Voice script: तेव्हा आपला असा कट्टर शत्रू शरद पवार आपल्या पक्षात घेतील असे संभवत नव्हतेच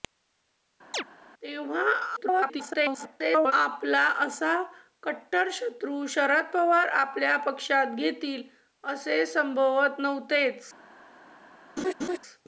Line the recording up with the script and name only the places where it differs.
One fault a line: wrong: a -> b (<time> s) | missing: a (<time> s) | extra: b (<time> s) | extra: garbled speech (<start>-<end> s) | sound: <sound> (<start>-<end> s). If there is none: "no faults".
sound: chirp (0.9-1.0 s)
extra: garbled speech (2.2-3.5 s)
sound: laugh (11.8-12.2 s)